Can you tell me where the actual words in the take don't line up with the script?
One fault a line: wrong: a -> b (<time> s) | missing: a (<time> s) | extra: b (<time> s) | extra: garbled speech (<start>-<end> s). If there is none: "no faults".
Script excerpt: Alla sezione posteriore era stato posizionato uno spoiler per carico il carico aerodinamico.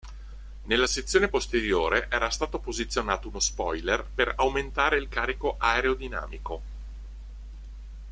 wrong: Alla -> Nella (0.6 s)
wrong: carico -> aumentare (4.4 s)